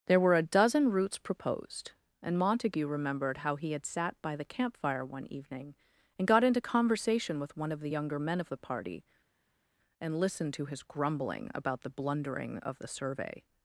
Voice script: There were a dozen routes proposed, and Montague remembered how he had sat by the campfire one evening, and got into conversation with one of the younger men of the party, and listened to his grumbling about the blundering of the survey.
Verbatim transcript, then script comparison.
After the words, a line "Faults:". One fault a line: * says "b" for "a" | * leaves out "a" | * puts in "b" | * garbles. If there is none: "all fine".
There were a dozen routes proposed, and Montague remembered how he had sat by the campfire one evening, and got into conversation with one of the younger men of the party, and listened to his grumbling about the blundering of the survey.
Faults:
all fine